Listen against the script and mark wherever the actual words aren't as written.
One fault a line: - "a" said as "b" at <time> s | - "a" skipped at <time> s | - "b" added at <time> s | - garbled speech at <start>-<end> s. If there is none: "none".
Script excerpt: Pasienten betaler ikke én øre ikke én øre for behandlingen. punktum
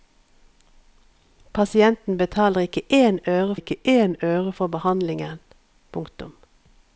none